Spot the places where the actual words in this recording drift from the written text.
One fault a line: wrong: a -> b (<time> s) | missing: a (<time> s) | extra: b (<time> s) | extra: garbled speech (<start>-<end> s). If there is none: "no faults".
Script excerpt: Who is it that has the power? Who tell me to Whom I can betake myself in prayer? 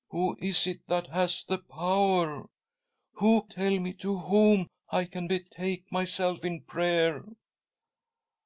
no faults